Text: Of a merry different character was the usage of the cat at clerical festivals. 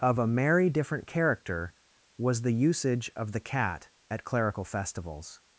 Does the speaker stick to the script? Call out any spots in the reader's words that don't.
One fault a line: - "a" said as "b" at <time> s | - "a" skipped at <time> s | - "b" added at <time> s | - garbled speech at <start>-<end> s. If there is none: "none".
none